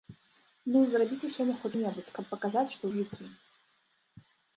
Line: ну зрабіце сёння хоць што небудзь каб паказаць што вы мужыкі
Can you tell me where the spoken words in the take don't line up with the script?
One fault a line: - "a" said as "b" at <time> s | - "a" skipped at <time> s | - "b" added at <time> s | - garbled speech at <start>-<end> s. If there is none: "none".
- "што" skipped at 1.7 s
- "вы" skipped at 2.8 s